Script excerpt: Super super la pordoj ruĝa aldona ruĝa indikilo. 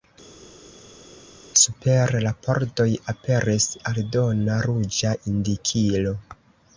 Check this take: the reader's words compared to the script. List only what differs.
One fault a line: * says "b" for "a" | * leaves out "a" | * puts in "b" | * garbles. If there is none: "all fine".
* leaves out "super"
* says "aperis" for "ruĝa"